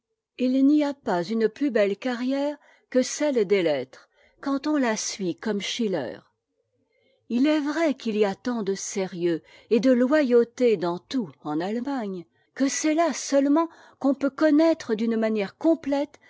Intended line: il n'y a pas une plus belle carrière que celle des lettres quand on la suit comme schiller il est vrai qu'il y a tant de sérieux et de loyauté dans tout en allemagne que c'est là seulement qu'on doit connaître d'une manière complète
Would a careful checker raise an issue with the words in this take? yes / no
yes